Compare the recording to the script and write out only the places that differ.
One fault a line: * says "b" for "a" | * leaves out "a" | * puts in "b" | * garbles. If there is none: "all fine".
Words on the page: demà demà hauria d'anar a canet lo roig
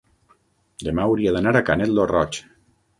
* leaves out "demà"